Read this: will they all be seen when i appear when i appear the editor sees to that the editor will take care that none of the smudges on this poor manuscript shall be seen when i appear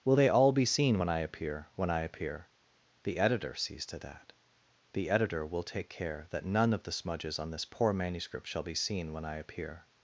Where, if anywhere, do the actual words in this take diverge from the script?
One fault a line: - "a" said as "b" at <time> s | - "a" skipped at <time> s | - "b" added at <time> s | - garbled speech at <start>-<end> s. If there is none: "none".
none